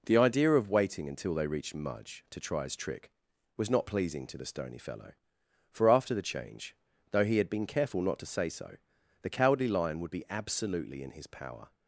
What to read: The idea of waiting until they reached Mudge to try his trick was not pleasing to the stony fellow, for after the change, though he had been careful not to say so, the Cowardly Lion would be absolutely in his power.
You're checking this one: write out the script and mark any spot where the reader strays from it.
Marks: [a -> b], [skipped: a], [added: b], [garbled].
The idea of waiting until they reached Mudge to try his trick was not pleasing to the stony fellow, for after the change, though he had been careful not to say so, the Cowardly Lion would be absolutely in his power.